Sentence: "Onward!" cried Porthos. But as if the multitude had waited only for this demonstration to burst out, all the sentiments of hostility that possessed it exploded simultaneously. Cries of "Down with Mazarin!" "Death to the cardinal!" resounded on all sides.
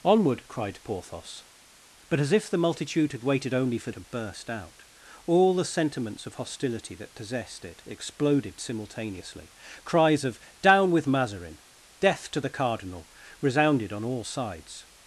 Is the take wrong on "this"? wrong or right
wrong